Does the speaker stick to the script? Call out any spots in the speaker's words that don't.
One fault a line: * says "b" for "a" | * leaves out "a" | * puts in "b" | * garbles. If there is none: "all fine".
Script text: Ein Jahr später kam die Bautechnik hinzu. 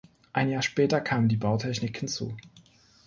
all fine